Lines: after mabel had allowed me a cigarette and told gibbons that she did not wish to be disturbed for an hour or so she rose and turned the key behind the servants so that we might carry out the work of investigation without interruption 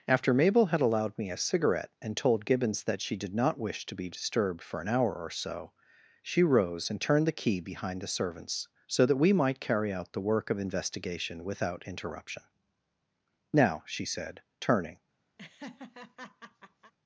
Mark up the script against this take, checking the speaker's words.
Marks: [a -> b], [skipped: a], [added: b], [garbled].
after mabel had allowed me a cigarette and told gibbons that she did not wish to be disturbed for an hour or so she rose and turned the key behind the servants so that we might carry out the work of investigation without interruption [added: now she said turning]